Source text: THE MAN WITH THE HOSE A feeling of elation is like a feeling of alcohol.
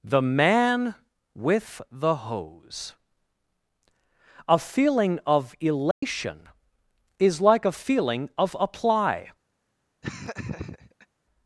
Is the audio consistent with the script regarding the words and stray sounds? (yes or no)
no